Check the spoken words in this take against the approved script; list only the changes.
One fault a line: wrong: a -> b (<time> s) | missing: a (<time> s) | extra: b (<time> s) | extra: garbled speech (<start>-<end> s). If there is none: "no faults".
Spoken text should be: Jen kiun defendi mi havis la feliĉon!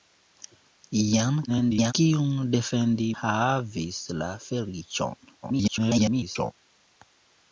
extra: garbled speech (1.5-1.9 s)
missing: mi (3.1 s)
extra: garbled speech (5.4-6.5 s)